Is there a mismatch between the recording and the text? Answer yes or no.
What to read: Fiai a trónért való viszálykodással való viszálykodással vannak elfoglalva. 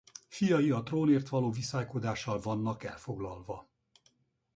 yes